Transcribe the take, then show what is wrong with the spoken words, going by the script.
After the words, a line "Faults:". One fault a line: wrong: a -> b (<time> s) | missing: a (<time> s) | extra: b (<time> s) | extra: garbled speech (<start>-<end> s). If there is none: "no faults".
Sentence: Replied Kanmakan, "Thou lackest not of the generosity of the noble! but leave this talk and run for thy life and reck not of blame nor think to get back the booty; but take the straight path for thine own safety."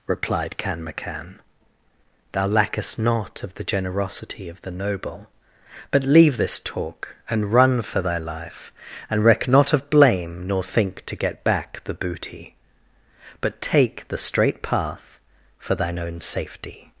Replied Kanmakan, "Thou lackest not of the generosity of the noble! but leave this talk and run for thy life and reck not of blame nor think to get back the booty; but take the straight path for thine own safety."
Faults:
no faults